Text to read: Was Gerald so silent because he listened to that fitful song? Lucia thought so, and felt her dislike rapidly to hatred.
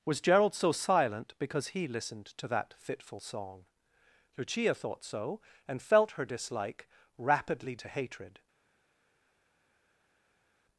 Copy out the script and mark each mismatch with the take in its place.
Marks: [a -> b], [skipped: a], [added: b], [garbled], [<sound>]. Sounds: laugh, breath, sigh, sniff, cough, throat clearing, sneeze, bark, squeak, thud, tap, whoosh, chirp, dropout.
Was Gerald so silent because he listened to that fitful song? Lucia thought so, and felt her dislike rapidly to hatred.